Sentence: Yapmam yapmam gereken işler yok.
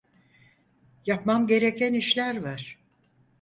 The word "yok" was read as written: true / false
false